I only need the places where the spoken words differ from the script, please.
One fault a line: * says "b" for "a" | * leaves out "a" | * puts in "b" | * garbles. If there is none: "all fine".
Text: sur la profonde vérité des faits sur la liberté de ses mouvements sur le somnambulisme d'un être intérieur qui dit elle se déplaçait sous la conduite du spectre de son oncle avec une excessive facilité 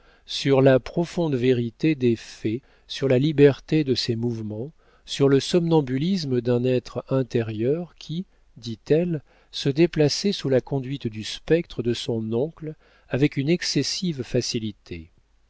all fine